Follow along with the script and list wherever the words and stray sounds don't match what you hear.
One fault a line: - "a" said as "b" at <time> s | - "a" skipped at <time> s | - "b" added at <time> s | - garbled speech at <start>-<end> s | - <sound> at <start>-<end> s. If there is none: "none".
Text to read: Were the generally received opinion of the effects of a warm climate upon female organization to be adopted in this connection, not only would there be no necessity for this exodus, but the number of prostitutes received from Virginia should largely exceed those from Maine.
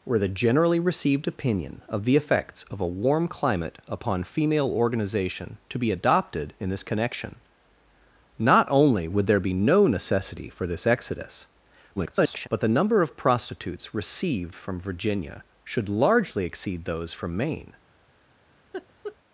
- garbled speech at 12.0-12.5 s
- laugh at 18.7-19.2 s